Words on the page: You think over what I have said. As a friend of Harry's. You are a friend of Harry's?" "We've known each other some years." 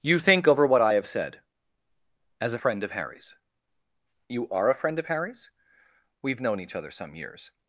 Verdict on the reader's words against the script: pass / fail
pass